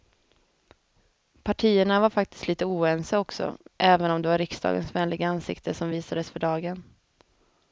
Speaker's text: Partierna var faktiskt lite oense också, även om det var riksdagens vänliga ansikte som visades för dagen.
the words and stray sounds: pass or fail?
pass